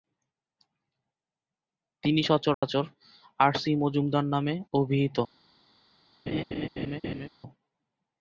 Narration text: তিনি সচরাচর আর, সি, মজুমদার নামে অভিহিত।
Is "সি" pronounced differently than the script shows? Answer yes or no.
no